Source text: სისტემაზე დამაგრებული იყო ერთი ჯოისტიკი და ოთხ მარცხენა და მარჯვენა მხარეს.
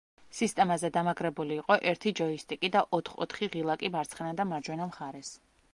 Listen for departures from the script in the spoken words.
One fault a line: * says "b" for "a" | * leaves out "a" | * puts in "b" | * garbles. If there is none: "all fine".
* puts in "ოთხი ღილაკი"